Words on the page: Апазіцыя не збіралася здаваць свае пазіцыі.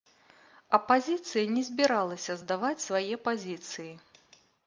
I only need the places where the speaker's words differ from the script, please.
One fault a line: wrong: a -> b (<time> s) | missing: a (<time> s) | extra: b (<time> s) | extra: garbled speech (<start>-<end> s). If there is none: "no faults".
no faults